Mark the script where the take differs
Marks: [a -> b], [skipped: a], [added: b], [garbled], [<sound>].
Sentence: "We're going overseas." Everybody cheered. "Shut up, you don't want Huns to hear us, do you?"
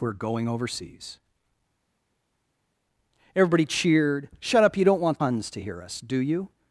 "We're going overseas." Everybody cheered. "Shut up, you don't want Huns to hear us, do you?"